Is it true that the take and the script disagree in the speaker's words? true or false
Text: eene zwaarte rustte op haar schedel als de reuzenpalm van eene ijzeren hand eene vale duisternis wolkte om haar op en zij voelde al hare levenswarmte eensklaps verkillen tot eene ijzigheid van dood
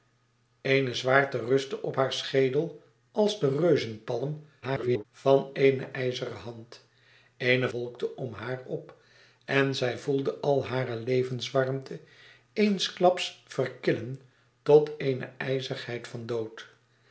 true